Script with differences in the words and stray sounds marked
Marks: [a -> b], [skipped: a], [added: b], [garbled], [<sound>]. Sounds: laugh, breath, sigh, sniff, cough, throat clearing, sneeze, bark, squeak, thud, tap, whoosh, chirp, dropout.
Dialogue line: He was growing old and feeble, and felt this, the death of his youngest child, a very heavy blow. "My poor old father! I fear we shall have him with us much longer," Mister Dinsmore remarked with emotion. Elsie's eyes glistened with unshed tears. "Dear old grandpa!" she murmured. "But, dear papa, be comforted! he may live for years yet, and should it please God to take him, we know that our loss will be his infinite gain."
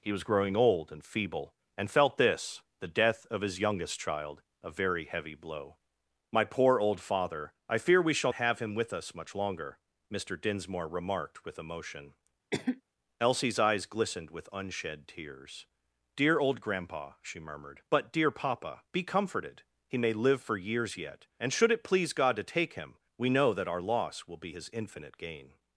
He was growing old and feeble, and felt this, the death of his youngest child, a very heavy blow. "My poor old father! I fear we shall have him with us much longer," Mister Dinsmore remarked with emotion. [cough] Elsie's eyes glistened with unshed tears. "Dear old grandpa!" she murmured. "But, dear papa, be comforted! he may live for years yet, and should it please God to take him, we know that our loss will be his infinite gain."